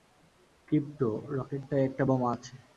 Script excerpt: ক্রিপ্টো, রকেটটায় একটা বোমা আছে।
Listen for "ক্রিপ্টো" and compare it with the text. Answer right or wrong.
right